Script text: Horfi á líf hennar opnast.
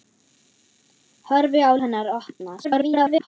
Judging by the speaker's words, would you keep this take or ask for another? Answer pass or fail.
fail